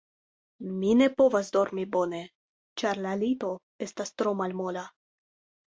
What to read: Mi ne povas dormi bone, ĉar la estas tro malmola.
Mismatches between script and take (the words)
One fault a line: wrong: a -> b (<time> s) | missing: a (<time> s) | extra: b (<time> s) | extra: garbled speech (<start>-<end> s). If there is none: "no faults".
extra: lito (3.3 s)